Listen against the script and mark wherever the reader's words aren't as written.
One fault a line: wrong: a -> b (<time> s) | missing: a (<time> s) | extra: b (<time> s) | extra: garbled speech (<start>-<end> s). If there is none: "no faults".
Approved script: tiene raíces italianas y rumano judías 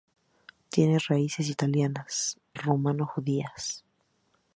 missing: y (2.4 s)